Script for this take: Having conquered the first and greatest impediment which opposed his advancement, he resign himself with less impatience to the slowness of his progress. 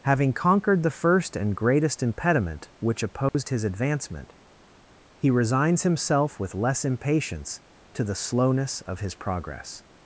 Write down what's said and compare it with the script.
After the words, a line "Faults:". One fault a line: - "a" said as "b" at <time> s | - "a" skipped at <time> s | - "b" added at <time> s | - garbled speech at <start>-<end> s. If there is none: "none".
Having conquered the first and greatest impediment which opposed his advancement, he resigns himself with less impatience to the slowness of his progress.
Faults:
- "resign" said as "resigns" at 5.3 s